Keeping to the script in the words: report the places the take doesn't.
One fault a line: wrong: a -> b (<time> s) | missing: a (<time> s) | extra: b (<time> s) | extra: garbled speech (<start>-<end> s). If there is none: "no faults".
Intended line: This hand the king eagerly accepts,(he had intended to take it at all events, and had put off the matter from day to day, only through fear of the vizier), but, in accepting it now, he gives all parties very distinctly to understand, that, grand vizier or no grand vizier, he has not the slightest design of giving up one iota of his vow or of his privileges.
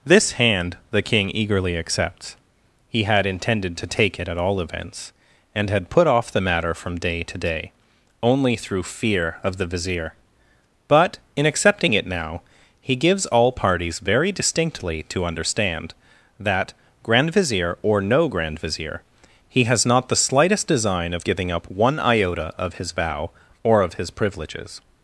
no faults